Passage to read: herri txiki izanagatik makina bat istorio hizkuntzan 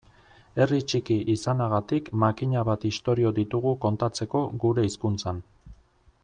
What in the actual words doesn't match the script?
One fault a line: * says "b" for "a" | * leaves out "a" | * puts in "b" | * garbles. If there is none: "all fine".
* puts in "ditugu kontatzeko gure"